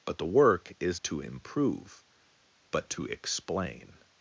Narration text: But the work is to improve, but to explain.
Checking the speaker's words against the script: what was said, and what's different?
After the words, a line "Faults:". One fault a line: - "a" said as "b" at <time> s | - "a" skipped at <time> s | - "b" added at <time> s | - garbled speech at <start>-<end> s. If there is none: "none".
But the work is to improve, but to explain.
Faults:
none